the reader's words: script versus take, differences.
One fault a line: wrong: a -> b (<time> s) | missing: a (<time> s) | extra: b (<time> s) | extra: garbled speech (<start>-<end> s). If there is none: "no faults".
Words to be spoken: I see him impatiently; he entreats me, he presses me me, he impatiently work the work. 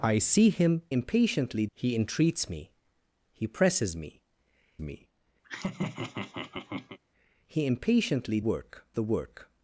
no faults